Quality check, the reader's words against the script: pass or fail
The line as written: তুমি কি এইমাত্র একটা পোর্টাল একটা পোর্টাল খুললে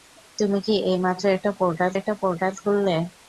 pass